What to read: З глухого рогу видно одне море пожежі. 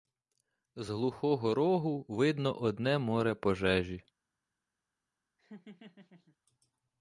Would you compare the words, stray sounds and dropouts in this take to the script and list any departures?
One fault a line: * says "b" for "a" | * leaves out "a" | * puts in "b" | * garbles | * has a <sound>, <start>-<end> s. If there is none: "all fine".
* has a laugh, 5.4-6.4 s